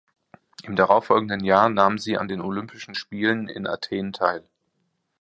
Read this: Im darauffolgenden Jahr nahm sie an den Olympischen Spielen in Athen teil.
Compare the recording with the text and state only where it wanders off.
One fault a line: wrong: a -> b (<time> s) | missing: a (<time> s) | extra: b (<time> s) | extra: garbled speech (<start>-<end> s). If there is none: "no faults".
no faults